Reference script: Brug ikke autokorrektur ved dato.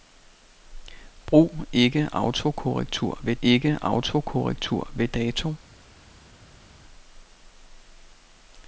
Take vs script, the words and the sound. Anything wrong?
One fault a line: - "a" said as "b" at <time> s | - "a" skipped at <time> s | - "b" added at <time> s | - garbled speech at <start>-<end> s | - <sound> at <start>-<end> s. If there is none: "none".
- "ikke autokorrektur ved" added at 3.4 s